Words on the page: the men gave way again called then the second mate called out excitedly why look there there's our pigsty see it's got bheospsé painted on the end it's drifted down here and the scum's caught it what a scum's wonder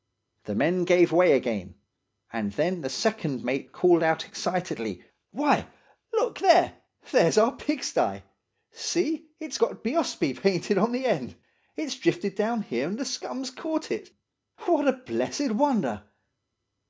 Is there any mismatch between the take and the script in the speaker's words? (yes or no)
yes